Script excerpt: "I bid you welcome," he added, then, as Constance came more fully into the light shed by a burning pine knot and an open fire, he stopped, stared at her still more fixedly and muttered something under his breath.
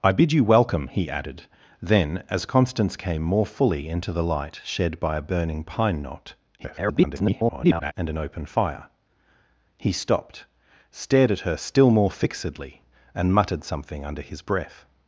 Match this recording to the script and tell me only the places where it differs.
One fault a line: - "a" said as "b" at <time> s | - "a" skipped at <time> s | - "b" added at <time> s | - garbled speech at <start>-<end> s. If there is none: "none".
- garbled speech at 6.6-7.9 s